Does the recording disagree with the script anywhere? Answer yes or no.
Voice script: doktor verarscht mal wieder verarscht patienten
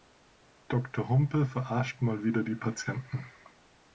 yes